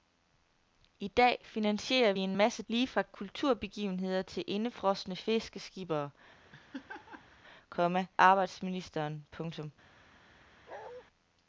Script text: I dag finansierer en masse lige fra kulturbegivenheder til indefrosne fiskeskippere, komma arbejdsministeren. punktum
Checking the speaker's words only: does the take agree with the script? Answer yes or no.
yes